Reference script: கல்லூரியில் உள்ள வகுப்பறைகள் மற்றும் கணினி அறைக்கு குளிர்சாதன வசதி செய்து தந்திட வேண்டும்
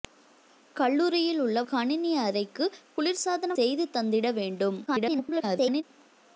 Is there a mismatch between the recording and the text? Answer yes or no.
yes